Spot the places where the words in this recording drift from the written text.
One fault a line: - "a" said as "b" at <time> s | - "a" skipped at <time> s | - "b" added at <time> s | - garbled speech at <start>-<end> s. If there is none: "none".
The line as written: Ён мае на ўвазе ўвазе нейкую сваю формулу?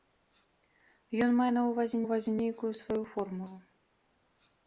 none